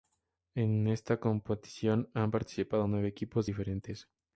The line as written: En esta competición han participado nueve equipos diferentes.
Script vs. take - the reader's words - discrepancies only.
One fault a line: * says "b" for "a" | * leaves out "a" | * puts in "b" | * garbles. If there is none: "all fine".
all fine